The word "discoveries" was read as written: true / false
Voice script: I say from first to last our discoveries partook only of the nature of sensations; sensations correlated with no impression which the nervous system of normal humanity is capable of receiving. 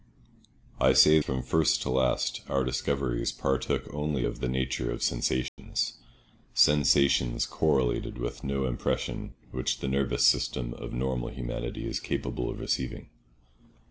true